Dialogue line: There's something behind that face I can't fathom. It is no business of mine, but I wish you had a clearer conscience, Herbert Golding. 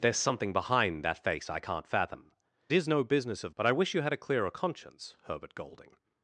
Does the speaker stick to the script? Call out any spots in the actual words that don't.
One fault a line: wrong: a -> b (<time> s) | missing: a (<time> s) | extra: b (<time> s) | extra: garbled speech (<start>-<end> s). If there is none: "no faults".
missing: It (2.3 s)
missing: mine (3.5 s)